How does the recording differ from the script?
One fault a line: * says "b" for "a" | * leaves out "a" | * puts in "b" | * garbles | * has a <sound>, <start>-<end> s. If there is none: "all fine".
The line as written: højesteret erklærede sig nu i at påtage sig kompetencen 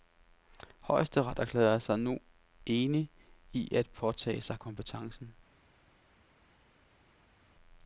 * puts in "enig"